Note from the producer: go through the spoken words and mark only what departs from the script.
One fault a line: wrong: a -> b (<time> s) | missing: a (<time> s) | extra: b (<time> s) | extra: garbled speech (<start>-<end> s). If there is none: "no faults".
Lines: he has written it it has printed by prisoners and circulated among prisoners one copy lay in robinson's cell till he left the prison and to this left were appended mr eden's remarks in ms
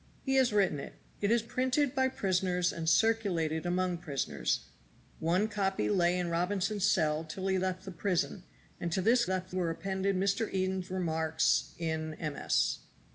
no faults